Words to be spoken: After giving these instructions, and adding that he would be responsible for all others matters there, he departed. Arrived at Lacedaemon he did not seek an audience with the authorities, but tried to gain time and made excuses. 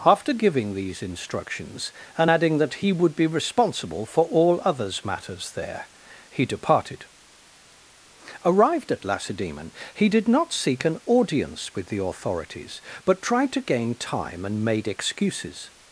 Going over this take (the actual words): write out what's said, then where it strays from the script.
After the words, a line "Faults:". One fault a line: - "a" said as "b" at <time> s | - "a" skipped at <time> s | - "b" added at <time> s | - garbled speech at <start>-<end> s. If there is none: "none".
After giving these instructions, and adding that he would be responsible for all others matters there, he departed. Arrived at Lacedaemon he did not seek an audience with the authorities, but tried to gain time and made excuses.
Faults:
none